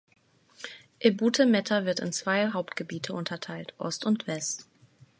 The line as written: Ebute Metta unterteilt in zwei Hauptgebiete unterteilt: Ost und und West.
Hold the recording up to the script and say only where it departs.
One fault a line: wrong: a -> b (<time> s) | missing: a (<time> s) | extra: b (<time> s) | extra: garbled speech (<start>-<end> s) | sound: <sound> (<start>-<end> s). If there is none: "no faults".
wrong: unterteilt -> wird (1.9 s)
missing: und (4.3 s)